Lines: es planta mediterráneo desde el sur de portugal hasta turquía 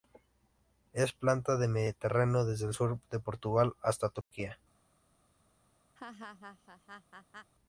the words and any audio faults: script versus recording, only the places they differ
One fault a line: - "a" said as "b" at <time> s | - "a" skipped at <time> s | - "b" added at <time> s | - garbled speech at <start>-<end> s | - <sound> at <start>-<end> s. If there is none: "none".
- "del" added at 1.6 s
- dropout at 4.2-4.3 s
- laugh at 6.0-7.5 s